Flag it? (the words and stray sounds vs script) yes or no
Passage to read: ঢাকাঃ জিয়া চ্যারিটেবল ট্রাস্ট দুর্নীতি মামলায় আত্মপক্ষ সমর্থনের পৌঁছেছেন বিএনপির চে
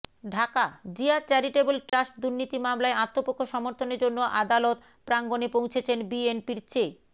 yes